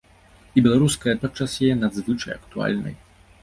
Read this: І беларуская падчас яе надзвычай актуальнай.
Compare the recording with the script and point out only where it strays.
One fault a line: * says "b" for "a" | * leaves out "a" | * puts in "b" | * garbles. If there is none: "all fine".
all fine